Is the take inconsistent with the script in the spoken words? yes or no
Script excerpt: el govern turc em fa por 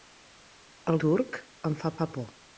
yes